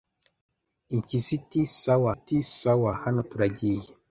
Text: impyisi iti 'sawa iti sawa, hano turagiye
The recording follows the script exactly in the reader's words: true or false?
true